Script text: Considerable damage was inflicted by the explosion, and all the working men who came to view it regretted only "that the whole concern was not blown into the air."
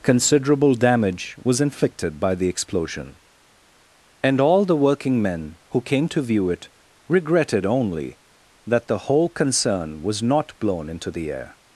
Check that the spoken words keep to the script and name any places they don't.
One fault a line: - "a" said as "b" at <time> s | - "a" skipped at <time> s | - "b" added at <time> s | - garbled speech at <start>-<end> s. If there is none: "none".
none